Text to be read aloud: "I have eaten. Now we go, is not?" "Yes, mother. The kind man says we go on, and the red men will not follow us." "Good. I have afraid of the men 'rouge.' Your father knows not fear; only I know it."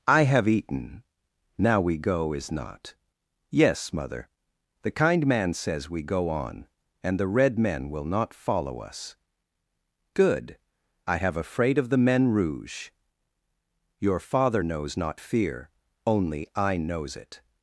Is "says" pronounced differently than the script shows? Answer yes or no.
no